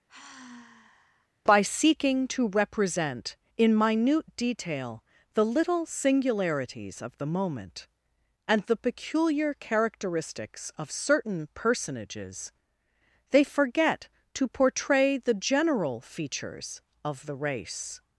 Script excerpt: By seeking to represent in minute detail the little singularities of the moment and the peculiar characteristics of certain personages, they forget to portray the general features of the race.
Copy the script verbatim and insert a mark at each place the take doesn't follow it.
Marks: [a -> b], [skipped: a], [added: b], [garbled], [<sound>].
[sigh] By seeking to represent in minute detail the little singularities of the moment and the peculiar characteristics of certain personages, they forget to portray the general features of the race.